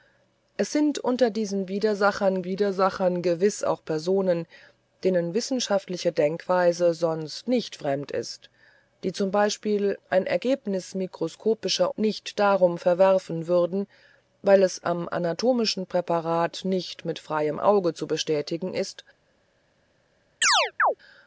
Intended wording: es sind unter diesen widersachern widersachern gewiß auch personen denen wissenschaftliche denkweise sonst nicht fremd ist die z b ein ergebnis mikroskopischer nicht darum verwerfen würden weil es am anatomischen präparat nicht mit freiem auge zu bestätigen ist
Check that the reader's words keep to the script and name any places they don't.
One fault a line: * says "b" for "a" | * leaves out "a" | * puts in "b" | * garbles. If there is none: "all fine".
all fine